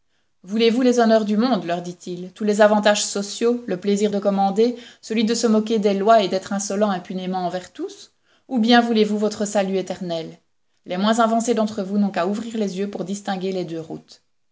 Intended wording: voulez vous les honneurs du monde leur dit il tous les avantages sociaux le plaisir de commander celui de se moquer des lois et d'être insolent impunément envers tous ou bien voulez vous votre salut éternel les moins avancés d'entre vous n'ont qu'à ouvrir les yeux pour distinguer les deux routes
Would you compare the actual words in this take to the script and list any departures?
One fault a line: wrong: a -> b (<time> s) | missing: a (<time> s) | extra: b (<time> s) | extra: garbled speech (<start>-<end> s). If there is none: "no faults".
no faults